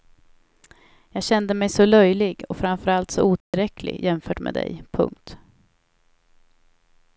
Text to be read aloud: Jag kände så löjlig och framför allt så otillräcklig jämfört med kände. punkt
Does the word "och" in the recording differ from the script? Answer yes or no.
no